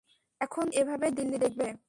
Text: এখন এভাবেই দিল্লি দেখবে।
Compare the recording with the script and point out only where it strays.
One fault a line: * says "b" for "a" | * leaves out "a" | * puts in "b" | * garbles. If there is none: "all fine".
all fine